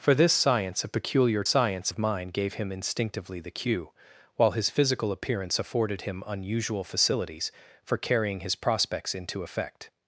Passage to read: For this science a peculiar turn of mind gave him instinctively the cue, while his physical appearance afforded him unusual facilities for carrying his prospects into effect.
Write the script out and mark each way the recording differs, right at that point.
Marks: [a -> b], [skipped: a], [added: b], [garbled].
For this science a peculiar [turn -> science] of mind gave him instinctively the cue, while his physical appearance afforded him unusual facilities for carrying his prospects into effect.